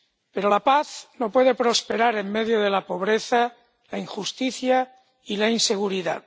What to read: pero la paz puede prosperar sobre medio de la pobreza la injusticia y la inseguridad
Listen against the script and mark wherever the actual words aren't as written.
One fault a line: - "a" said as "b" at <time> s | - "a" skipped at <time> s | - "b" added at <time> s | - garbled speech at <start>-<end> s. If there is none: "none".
- "no" added at 1.2 s
- "sobre" said as "en" at 2.2 s